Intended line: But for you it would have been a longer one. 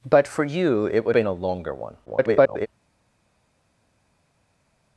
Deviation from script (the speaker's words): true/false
true